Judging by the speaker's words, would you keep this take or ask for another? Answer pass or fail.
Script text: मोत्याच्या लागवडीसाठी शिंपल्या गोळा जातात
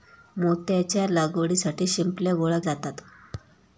pass